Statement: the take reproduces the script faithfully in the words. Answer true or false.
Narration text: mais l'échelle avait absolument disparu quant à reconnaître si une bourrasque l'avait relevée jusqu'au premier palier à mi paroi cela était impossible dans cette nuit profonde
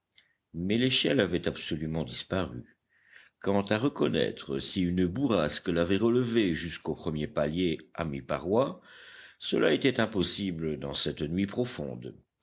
true